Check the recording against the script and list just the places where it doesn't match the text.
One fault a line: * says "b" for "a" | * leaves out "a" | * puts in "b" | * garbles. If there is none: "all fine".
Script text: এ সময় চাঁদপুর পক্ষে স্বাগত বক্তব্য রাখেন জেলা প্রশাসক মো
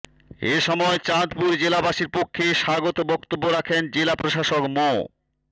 * puts in "জেলাবাসীর"